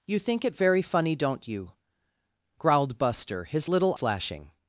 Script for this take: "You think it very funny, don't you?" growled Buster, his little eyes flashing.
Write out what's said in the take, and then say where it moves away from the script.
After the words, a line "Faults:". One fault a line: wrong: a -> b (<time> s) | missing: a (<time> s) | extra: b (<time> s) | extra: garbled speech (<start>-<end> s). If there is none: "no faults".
"You think it very funny, don't you?" growled Buster, his little flashing.
Faults:
missing: eyes (3.9 s)